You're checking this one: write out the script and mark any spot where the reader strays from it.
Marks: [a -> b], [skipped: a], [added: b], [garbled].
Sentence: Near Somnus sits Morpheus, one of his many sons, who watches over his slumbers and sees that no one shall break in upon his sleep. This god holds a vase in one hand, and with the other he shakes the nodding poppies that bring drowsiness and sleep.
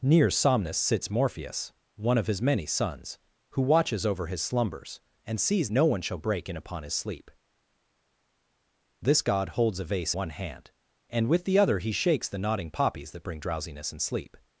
Near Somnus sits Morpheus, one of his many sons, who watches over his slumbers and sees [skipped: that] no one shall break in upon his sleep. This god holds a vase [skipped: in] one hand, and with the other he shakes the nodding poppies that bring drowsiness and sleep.